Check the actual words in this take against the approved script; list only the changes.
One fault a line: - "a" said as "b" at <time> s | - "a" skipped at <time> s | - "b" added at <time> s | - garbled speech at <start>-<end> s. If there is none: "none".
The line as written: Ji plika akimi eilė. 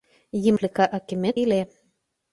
none